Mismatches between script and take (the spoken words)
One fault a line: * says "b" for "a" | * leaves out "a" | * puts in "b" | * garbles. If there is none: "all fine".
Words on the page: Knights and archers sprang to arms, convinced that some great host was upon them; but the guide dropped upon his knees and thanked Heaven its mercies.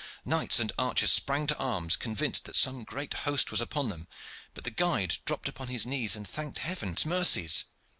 all fine